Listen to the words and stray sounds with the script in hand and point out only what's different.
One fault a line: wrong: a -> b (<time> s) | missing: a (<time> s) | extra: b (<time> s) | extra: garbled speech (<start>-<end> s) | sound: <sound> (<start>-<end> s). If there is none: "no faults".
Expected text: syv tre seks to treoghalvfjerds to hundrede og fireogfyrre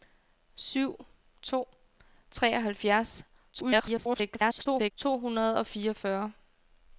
missing: tre seks (0.9 s)
extra: garbled speech (3.5-4.9 s)